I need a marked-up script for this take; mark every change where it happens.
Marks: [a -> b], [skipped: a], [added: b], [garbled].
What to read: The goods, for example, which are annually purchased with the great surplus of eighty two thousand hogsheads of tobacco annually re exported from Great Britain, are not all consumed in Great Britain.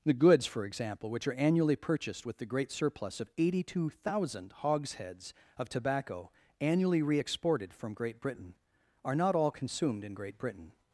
The goods, for example, which are annually purchased with the great surplus of eighty two thousand hogsheads of tobacco annually re exported from Great Britain, are not all consumed in Great Britain.